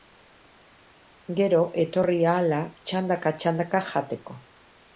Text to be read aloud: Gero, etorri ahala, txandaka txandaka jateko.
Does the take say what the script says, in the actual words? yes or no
yes